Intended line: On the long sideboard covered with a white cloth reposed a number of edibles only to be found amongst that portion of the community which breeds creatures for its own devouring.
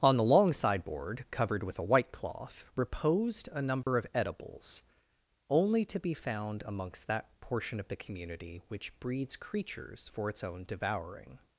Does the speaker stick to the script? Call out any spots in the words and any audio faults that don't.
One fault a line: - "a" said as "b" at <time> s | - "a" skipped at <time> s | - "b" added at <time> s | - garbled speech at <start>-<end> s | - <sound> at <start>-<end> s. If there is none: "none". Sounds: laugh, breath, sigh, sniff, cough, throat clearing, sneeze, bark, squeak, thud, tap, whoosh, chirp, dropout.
- dropout at 3.8-3.9 s